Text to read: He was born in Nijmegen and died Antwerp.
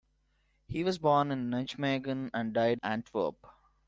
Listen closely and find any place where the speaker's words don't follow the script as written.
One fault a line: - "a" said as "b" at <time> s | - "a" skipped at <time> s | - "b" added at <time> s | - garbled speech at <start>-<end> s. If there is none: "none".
none